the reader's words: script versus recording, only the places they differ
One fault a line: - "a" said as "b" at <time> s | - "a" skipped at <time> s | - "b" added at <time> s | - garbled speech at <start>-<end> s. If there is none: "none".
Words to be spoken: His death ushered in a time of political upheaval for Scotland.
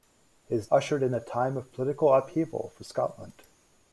- "death" skipped at 0.7 s